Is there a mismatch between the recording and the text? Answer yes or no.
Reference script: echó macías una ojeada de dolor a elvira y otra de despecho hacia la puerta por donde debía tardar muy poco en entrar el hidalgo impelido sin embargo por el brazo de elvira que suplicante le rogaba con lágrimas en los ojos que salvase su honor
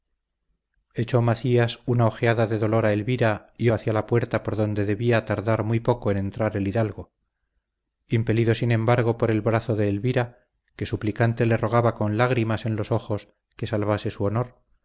yes